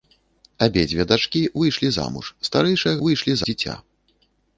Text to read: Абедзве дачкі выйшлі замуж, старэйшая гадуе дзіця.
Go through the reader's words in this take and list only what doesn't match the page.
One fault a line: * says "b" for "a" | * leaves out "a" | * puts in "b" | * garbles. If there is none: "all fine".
* says "выйшлі" for "гадуе"